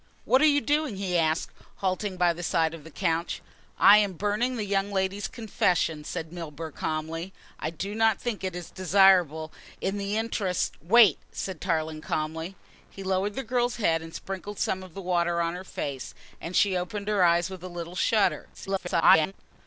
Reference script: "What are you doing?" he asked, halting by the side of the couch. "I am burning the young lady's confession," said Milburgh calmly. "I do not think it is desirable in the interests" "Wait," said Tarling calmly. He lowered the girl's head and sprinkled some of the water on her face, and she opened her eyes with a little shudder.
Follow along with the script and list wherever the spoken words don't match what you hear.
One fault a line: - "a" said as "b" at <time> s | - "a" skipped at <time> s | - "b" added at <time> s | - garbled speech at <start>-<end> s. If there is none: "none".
- garbled speech at 18.5-19.3 s